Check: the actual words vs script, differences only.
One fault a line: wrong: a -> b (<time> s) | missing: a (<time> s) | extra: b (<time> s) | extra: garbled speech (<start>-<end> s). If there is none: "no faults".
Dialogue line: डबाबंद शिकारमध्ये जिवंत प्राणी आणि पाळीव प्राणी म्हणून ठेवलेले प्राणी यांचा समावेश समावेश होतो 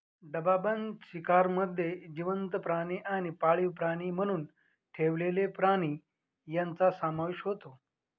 missing: समावेश (7.4 s)